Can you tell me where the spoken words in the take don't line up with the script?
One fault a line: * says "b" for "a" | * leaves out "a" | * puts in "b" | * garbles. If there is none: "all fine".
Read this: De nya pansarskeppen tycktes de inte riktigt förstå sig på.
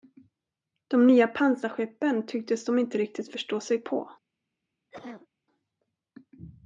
all fine